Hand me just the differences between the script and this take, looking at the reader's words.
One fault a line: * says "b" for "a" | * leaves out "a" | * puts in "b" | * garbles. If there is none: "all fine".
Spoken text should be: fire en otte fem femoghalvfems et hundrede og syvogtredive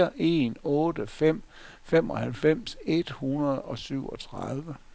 all fine